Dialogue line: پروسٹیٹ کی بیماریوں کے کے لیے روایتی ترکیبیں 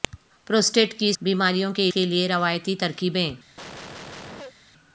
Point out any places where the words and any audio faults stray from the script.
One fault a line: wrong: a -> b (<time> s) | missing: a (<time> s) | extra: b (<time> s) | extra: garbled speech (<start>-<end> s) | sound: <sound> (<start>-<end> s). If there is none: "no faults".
sound: cough (3.6-4.5 s)